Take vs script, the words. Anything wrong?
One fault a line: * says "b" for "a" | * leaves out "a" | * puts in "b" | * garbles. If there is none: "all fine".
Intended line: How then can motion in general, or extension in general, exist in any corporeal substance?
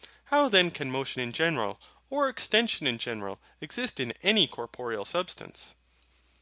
all fine